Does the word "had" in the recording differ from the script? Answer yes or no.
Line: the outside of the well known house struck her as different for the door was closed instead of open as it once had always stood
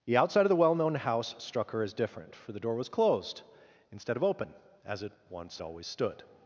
yes